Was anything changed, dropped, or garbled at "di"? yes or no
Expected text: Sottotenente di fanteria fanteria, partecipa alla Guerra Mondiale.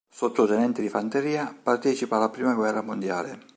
no